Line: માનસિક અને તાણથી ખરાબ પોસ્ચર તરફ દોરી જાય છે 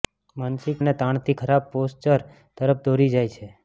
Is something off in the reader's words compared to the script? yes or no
no